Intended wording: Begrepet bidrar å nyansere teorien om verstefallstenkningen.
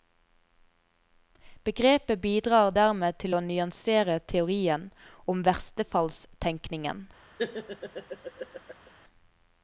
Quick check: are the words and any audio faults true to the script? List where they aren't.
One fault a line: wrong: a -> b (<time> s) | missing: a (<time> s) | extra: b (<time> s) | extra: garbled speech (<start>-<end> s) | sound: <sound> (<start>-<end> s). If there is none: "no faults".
extra: dermed til (2.8 s)
sound: laugh (7.4-8.9 s)